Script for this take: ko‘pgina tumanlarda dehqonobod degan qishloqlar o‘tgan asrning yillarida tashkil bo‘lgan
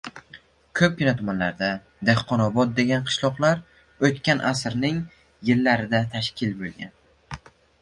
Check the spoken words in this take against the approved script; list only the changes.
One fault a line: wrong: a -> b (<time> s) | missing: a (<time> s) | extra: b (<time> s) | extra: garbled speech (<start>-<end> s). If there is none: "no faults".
no faults